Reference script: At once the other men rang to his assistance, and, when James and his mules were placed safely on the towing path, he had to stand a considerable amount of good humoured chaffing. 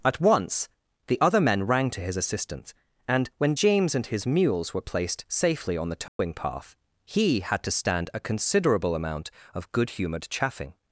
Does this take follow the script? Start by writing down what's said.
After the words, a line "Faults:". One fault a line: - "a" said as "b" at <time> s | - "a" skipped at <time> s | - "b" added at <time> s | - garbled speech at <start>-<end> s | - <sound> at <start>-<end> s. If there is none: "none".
At once the other men rang to his assistance, and, when James and his mules were placed safely on the towing path, he had to stand a considerable amount of good humoured chaffing.
Faults:
- dropout at 6.1-6.2 s